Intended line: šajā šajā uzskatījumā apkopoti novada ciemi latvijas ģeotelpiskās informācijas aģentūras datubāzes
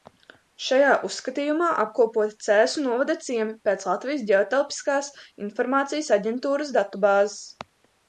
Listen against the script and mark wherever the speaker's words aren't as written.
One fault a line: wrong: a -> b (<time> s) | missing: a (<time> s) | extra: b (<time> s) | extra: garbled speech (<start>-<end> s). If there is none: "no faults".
missing: šajā (0.9 s)
extra: cēsu (2.5 s)
extra: pēc (3.7 s)